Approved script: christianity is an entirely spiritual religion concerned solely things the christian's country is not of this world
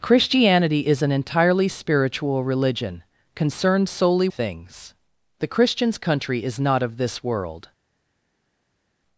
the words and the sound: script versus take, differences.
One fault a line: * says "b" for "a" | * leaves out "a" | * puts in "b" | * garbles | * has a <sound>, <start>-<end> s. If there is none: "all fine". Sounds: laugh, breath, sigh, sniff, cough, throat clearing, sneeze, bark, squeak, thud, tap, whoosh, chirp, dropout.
all fine